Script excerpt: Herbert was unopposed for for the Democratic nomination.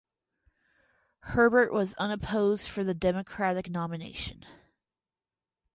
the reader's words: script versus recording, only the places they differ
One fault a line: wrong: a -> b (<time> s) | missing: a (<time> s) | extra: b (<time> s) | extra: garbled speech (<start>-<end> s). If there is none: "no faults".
missing: for (2.9 s)